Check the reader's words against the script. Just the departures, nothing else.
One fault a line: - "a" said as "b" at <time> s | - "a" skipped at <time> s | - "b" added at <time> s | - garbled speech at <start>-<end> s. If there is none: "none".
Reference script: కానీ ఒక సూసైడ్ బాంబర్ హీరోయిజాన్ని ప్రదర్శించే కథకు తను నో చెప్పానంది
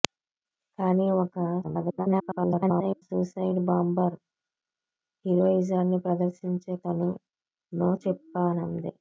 - garbled speech at 1.6-3.0 s
- "కథకు" skipped at 6.7 s